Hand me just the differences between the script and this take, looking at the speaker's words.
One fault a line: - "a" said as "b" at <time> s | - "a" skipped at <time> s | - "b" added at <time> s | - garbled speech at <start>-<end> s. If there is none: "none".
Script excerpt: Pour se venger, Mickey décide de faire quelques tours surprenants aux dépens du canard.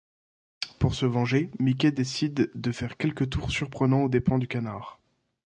none